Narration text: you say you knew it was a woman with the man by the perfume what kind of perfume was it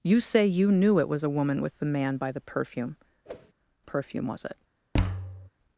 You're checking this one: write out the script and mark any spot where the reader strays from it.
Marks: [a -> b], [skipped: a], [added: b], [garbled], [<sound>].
you say you knew it was a woman with the man by the perfume [skipped: what kind of] [whoosh] perfume was it [thud]